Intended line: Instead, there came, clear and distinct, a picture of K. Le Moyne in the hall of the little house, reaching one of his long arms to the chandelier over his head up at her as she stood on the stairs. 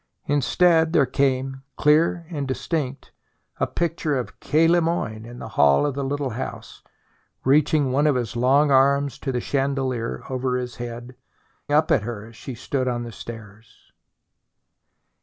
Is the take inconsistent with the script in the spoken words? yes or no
no